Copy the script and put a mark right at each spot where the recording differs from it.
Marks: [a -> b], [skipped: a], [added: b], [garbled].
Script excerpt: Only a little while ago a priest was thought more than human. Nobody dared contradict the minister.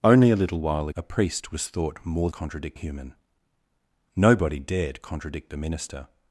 Only a little while [skipped: ago] a priest was thought more [than -> contradict] human. Nobody dared contradict the minister.